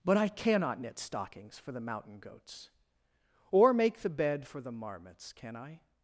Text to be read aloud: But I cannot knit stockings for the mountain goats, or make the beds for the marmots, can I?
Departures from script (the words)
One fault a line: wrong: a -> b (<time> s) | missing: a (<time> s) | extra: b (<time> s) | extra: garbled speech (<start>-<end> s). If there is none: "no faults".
wrong: beds -> bed (4.1 s)